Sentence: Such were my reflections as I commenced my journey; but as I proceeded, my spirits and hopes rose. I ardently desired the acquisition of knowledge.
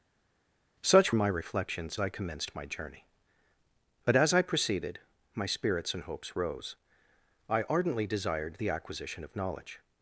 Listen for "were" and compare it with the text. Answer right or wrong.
wrong